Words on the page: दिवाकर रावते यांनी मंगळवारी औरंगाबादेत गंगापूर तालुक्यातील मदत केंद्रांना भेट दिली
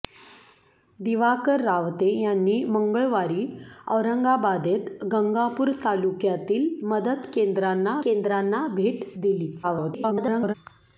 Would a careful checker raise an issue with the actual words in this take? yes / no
yes